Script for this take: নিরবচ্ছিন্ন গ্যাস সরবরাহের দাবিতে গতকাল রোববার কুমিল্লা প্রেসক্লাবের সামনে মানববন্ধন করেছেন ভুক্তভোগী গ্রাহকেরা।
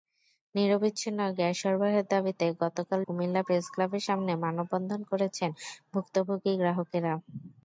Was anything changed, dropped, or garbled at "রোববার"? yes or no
yes